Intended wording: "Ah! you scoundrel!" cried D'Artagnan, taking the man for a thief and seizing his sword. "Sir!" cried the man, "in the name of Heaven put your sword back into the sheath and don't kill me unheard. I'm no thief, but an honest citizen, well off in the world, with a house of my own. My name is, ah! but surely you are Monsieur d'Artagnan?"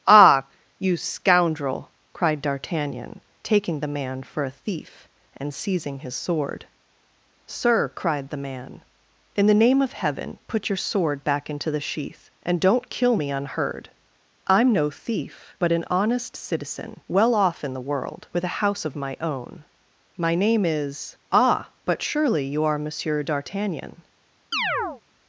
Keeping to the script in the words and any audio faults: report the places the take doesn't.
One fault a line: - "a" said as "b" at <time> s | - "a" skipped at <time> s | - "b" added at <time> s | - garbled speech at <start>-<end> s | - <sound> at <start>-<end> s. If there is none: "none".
- chirp at 24.5-25.0 s